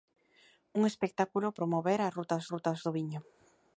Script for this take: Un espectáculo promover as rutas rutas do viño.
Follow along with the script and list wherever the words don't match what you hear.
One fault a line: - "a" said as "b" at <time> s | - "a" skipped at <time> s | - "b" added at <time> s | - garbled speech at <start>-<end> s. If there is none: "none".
none